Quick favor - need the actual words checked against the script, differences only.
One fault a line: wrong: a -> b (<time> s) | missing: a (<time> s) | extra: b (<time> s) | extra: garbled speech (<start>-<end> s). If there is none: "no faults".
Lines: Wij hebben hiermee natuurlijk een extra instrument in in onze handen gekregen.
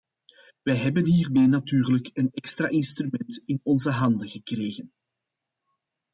missing: in (3.6 s)